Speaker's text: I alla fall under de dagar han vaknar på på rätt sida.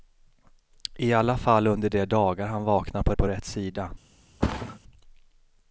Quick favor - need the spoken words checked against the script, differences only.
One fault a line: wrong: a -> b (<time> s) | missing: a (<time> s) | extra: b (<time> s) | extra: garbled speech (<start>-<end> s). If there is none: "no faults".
no faults